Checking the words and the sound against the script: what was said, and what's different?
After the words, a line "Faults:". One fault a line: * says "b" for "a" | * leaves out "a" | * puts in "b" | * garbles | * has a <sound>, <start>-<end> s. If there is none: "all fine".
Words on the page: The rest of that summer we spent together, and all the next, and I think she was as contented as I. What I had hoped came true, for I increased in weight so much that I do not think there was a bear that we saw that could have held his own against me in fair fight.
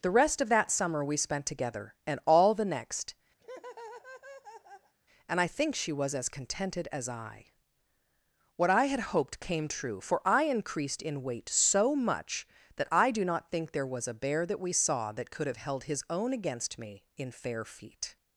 The rest of that summer we spent together, and all the next, and I think she was as contented as I. What I had hoped came true, for I increased in weight so much that I do not think there was a bear that we saw that could have held his own against me in fair feet.
Faults:
* has a laugh, 3.4-4.9 s
* says "feet" for "fight"